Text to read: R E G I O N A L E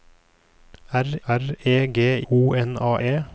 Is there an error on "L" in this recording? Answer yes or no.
yes